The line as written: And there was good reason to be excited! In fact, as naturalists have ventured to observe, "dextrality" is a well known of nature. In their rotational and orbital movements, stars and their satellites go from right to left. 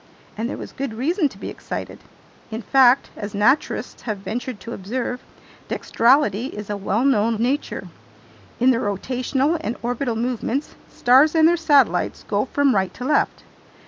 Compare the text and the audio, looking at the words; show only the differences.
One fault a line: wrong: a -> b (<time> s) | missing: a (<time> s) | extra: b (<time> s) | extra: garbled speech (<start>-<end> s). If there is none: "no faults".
no faults